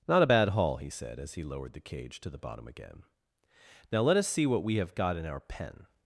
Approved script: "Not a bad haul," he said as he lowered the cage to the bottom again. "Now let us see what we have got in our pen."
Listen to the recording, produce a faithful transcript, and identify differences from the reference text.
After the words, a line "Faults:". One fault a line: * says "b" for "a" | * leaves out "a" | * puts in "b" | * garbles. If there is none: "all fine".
"Not a bad haul," he said as he lowered the cage to the bottom again. "Now let us see what we have got in our pen."
Faults:
all fine